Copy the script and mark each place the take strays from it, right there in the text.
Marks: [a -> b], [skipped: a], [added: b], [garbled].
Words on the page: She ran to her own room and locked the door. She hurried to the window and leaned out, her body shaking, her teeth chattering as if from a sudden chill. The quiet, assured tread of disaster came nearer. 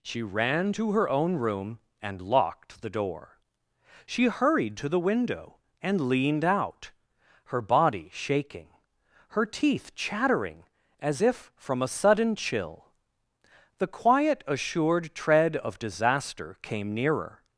She ran to her own room and locked the door. She hurried to the window and leaned out, her body shaking, her teeth chattering as if from a sudden chill. The quiet, assured tread of disaster came nearer.